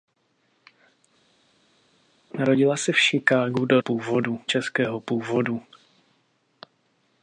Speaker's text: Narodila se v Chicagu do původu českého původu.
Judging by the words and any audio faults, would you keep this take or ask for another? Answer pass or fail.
pass